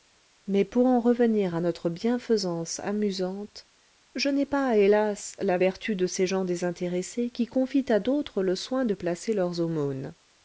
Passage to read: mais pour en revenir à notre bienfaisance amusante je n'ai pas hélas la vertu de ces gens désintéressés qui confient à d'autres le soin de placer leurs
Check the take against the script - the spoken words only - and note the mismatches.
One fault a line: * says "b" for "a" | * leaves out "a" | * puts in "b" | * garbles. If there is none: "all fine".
all fine